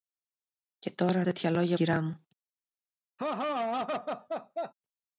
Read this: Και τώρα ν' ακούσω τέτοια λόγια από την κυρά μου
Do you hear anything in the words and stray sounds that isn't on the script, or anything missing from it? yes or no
yes